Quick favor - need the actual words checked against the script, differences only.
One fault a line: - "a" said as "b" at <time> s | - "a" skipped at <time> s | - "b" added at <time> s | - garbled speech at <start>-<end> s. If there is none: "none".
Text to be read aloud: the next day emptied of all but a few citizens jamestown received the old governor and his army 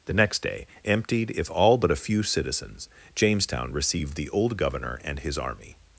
- "of" said as "if" at 1.3 s